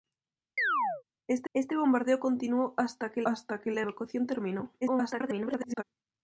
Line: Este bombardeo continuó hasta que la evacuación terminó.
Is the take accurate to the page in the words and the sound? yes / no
no